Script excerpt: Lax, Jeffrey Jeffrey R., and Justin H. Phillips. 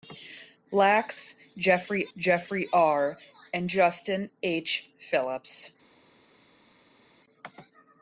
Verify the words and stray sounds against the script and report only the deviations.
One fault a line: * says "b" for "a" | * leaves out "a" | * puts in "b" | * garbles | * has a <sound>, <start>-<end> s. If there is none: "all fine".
all fine